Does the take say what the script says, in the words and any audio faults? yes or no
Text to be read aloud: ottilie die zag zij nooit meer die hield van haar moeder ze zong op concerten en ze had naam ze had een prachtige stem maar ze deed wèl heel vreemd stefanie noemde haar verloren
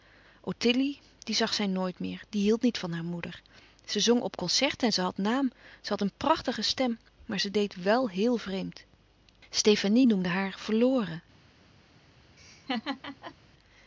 no